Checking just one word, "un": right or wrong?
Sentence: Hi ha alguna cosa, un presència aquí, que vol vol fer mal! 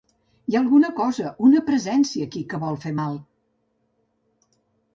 wrong